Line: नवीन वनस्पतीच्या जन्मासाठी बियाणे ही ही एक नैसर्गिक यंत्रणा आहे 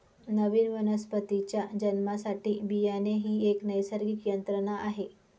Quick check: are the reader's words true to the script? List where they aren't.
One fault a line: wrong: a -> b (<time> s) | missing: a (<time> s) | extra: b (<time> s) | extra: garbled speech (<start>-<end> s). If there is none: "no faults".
missing: ही (3.4 s)